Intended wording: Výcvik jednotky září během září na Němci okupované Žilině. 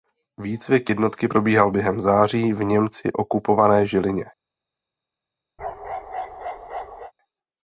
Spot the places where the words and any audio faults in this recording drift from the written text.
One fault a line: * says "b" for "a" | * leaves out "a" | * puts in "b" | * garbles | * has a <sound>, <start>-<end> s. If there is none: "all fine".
* says "probíhal" for "září"
* says "v" for "na"
* has a bark, 5.6-7.1 s